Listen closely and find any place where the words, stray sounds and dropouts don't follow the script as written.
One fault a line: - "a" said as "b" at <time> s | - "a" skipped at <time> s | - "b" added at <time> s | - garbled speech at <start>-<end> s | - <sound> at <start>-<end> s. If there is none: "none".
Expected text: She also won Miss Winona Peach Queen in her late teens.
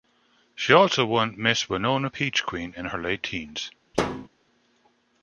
- thud at 3.9-4.3 s